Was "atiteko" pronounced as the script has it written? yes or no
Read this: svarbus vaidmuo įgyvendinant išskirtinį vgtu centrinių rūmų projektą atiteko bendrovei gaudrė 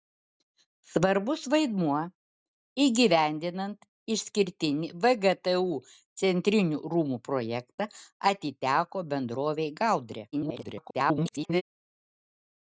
yes